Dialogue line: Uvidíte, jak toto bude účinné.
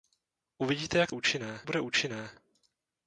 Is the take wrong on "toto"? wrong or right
wrong